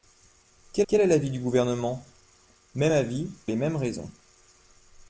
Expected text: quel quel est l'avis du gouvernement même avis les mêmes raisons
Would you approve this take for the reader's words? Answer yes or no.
yes